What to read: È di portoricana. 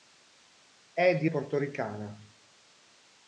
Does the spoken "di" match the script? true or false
true